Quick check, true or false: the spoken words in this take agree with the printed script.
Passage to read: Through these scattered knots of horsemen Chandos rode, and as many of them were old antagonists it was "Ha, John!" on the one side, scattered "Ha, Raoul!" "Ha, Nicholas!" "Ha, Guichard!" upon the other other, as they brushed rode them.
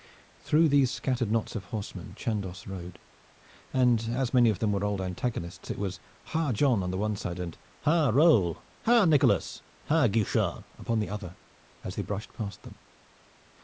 false